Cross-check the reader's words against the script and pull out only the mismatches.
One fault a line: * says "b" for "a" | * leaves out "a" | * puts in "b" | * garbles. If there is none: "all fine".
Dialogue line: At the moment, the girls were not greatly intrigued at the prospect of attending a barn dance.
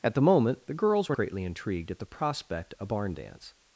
* leaves out "not"
* leaves out "of attending"